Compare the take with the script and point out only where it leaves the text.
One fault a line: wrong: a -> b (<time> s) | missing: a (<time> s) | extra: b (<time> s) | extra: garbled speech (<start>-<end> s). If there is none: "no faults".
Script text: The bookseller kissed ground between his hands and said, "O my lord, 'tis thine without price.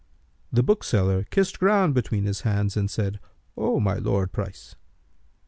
missing: tis thine without (4.3 s)